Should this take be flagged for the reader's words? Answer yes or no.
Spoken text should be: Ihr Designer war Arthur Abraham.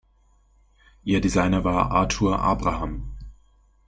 no